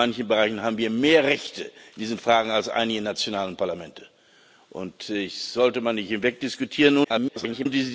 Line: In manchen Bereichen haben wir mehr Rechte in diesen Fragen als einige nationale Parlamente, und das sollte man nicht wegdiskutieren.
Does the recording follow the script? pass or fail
fail